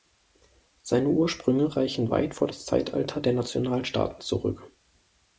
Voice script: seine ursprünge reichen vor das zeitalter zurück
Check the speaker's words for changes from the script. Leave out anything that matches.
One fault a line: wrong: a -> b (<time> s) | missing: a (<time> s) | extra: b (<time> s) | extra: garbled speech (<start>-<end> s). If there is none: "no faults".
extra: weit (2.1 s)
extra: der nationalstaaten (3.2 s)